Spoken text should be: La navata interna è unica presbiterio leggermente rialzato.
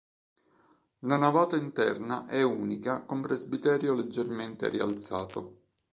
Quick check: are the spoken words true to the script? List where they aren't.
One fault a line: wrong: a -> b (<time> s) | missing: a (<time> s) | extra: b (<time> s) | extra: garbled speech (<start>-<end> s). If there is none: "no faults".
extra: con (3.0 s)